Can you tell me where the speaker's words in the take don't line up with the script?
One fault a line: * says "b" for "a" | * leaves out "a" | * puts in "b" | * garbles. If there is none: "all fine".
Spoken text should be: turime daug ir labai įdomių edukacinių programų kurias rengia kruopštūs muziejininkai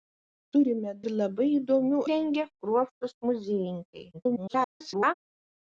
* leaves out "daug"
* leaves out "edukacinių programų kurias"
* garbles